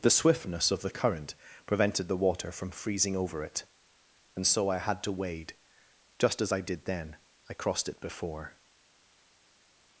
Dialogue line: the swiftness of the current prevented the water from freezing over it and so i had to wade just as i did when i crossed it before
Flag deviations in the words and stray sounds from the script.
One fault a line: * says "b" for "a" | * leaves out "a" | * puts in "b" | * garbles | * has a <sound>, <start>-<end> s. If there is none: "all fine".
* says "then" for "when"